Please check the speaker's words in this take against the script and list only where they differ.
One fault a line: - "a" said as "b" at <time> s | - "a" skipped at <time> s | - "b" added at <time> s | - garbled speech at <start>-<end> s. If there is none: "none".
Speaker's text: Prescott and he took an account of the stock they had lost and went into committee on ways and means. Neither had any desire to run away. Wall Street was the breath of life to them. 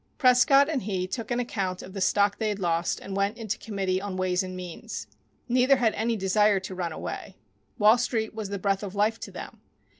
none